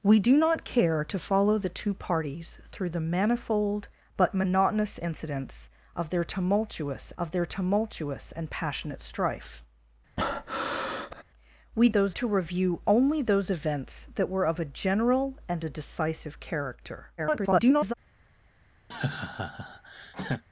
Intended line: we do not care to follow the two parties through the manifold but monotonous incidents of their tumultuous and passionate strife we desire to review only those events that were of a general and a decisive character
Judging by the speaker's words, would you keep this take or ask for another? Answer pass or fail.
fail